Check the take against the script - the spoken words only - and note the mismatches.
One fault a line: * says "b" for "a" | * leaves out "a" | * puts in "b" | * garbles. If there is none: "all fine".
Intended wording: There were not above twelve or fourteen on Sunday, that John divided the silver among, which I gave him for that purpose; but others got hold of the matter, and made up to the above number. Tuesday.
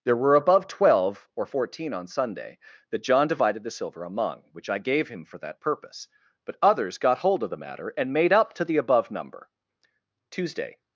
* leaves out "not"